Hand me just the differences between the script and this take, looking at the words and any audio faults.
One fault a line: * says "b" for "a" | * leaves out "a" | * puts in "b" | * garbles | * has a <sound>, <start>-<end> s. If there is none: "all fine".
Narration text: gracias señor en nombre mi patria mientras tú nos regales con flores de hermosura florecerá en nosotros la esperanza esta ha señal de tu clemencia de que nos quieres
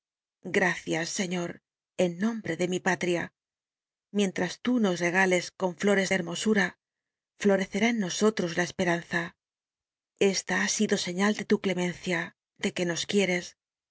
* puts in "de"
* puts in "sido"